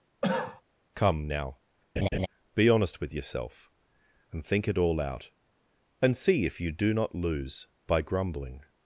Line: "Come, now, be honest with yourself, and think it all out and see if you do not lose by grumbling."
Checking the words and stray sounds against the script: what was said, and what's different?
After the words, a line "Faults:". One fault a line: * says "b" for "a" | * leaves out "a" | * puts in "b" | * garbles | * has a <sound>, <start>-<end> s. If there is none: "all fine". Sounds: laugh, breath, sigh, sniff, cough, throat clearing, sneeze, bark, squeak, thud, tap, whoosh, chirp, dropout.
"Come, now, be honest with yourself, and think it all out and see if you do not lose by grumbling."
Faults:
* has a cough, 0.2-0.6 s
* has a laugh, 2.0-2.3 s